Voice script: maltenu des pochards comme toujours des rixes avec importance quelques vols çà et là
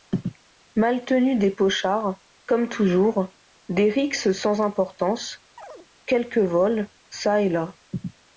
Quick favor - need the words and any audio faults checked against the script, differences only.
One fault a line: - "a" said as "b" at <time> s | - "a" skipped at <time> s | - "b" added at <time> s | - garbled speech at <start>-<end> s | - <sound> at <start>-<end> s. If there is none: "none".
- "avec" said as "sans" at 4.3 s
- chirp at 5.6-5.9 s